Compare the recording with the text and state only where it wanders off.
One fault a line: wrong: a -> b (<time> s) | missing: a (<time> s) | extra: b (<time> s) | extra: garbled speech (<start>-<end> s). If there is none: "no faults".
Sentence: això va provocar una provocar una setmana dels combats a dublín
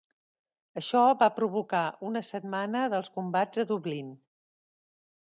missing: provocar una (2.2 s)